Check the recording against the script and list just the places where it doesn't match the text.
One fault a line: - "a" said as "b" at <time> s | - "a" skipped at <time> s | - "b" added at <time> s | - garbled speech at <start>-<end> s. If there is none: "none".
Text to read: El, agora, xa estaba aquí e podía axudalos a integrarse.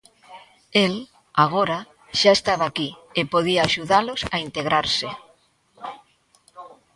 none